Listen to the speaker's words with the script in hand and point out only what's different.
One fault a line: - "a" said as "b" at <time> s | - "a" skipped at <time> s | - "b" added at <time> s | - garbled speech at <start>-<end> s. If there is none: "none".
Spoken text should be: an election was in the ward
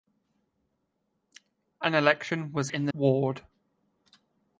none